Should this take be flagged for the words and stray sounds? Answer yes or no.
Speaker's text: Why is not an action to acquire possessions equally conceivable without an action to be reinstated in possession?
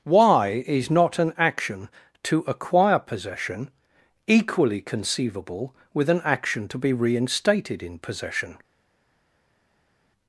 yes